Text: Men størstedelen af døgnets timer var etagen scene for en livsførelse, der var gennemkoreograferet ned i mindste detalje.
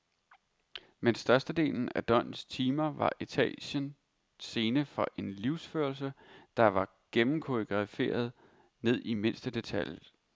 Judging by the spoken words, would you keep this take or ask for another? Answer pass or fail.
pass